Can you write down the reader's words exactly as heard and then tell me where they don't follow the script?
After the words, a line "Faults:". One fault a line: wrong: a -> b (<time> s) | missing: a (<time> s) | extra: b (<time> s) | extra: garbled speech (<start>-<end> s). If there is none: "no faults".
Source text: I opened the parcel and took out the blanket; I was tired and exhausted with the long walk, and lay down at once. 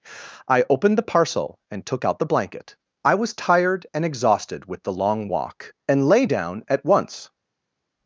I opened the parcel and took out the blanket; I was tired and exhausted with the long walk, and lay down at once.
Faults:
no faults